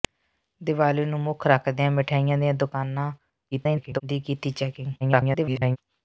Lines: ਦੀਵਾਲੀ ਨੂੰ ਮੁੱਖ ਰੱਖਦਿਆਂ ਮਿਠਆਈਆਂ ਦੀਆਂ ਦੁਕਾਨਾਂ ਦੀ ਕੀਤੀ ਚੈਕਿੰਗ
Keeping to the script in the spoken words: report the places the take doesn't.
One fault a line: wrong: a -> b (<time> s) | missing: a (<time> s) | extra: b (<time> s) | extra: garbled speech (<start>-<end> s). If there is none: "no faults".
extra: garbled speech (3.5-4.0 s)
extra: garbled speech (5.0-5.8 s)